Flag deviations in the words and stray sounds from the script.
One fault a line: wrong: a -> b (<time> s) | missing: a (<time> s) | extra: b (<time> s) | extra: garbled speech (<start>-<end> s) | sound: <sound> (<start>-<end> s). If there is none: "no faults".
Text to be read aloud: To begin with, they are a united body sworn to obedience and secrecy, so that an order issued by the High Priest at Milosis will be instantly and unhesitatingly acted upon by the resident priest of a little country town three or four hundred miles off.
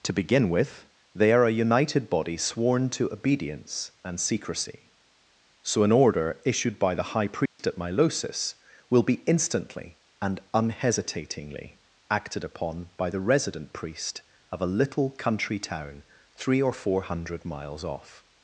missing: that (5.8 s)
sound: dropout (7.5-7.6 s)